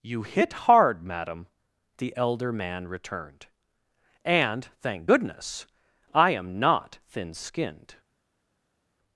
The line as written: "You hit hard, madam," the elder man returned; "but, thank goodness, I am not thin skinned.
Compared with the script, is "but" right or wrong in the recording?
wrong